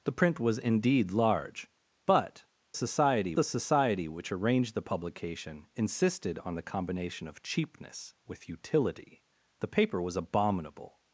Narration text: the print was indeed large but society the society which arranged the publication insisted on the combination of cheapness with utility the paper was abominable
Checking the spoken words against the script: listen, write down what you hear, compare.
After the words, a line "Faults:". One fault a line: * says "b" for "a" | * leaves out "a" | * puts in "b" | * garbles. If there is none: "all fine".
the print was indeed large but society the society which arranged the publication insisted on the combination of cheapness with utility the paper was abominable
Faults:
all fine